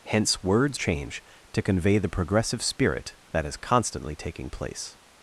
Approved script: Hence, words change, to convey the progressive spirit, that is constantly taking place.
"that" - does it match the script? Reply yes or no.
yes